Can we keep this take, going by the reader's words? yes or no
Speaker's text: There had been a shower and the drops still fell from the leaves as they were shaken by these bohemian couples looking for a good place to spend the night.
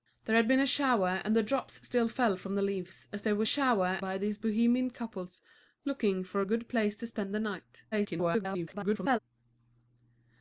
no